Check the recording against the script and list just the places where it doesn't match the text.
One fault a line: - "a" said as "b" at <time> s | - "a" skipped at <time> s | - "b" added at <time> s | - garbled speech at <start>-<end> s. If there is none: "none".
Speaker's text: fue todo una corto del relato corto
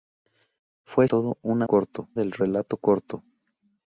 none